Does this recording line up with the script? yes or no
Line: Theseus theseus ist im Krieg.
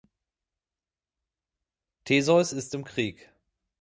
no